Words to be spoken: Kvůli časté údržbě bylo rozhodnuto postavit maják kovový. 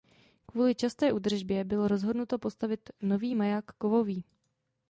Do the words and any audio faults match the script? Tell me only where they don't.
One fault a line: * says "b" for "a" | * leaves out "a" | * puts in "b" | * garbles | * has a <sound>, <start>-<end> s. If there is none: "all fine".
* puts in "nový"